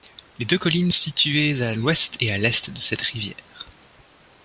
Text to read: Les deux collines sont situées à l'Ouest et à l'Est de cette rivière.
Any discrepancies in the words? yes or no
yes